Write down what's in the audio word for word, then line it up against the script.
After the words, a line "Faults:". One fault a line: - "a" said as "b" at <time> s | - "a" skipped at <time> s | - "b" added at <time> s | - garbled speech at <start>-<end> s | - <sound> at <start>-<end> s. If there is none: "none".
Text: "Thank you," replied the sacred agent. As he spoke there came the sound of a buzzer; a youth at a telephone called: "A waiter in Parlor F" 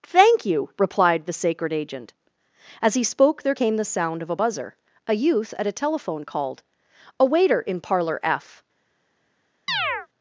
"Thank you," replied the sacred agent. As he spoke there came the sound of a buzzer; a youth at a telephone called: "A waiter in Parlor F"
Faults:
- chirp at 9.7-10.1 s